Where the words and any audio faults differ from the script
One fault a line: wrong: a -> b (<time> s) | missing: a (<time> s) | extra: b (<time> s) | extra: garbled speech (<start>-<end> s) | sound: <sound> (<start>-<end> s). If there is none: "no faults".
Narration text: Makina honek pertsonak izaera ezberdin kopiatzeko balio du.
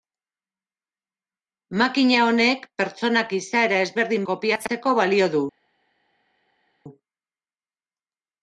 no faults